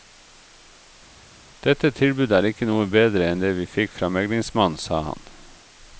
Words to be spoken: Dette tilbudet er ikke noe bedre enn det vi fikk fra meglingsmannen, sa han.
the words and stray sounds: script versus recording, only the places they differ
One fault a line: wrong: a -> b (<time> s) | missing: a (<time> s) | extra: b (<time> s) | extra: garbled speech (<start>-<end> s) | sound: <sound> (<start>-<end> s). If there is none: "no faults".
no faults